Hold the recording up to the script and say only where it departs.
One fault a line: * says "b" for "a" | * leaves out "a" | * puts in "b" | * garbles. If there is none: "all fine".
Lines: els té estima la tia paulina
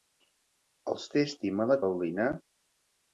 * leaves out "tia"